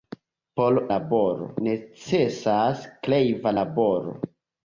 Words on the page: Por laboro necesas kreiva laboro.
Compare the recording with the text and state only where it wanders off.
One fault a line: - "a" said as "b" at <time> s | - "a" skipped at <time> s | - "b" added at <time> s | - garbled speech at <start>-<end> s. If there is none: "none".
none